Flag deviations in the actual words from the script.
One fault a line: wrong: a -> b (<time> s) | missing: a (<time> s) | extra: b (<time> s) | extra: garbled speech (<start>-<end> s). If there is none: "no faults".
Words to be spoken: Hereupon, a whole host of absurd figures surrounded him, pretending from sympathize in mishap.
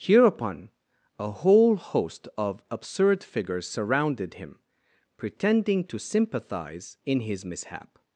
wrong: from -> to (5.8 s)
extra: his (7.2 s)